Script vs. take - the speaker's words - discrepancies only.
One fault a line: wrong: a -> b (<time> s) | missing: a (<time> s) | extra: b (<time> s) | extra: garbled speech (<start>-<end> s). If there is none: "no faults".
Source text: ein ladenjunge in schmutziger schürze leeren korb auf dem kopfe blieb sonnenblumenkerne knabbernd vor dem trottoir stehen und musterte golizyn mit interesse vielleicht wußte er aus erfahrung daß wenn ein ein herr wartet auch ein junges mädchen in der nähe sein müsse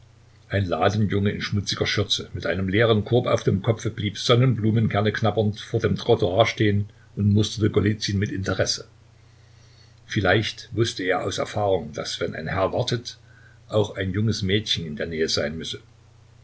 extra: mit einem (2.3 s)
missing: ein (12.5 s)